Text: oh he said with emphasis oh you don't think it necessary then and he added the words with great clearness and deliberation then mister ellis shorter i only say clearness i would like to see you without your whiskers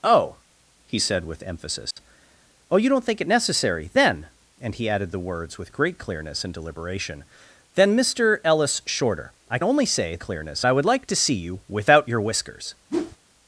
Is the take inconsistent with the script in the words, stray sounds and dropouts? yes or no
yes